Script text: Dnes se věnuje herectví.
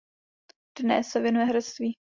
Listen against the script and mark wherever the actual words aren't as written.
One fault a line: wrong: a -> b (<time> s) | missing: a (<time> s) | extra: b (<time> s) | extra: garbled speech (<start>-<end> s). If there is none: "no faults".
no faults